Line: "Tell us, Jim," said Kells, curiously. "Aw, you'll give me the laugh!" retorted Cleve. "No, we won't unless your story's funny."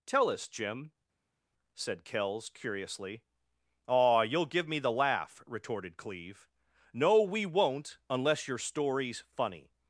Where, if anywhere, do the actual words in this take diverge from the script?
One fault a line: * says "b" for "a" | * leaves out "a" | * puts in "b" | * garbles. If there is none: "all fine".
all fine